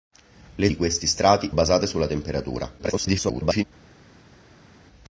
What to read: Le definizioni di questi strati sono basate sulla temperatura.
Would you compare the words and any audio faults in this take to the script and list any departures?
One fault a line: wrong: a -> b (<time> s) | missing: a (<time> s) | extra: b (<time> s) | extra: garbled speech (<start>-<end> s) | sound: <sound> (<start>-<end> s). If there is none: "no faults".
missing: definizioni (0.7 s)
missing: sono (1.5 s)
extra: garbled speech (2.8-3.6 s)